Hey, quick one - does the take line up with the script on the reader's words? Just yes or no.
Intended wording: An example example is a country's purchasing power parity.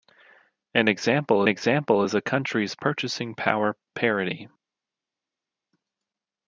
yes